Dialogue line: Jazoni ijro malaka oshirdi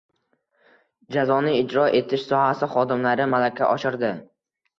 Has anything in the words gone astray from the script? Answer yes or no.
yes